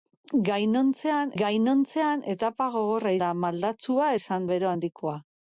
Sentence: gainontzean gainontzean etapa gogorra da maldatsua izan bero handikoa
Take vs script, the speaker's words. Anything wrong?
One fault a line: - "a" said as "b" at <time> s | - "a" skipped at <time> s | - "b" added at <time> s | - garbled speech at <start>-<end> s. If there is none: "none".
none